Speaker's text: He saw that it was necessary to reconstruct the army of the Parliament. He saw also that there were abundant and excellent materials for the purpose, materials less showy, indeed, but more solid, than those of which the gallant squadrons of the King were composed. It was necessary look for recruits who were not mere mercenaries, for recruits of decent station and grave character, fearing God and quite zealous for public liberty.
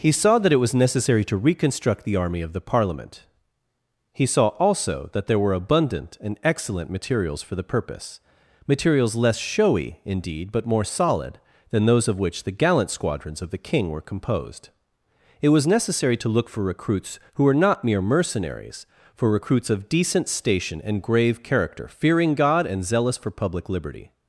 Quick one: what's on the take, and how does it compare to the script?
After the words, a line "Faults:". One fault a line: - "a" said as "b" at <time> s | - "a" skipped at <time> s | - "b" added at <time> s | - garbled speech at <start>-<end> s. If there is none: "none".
He saw that it was necessary to reconstruct the army of the Parliament. He saw also that there were abundant and excellent materials for the purpose, materials less showy, indeed, but more solid, than those of which the gallant squadrons of the King were composed. It was necessary to look for recruits who were not mere mercenaries, for recruits of decent station and grave character, fearing God and zealous for public liberty.
Faults:
- "to" added at 16.2 s
- "quite" skipped at 22.9 s